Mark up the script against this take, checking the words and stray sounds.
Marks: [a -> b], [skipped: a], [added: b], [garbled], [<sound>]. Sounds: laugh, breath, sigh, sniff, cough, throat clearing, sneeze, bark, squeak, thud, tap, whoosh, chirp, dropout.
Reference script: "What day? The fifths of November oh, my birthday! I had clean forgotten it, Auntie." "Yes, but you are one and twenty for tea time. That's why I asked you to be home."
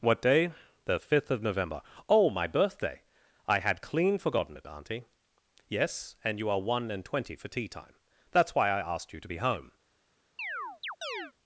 "What day? The [fifths -> fifth] of November oh, my birthday! I had clean forgotten it, Auntie." "Yes, [but -> and] you are one and twenty for tea time. That's why I asked you to be home." [chirp]